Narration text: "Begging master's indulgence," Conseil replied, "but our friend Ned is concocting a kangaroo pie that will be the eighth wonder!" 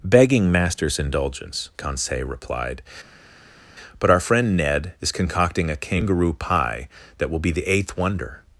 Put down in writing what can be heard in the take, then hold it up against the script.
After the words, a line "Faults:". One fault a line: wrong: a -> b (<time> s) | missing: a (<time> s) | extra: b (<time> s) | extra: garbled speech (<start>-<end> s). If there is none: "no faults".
"Begging master's indulgence," Conseil replied, "but our friend Ned is concocting a kangaroo pie that will be the eighth wonder!"
Faults:
no faults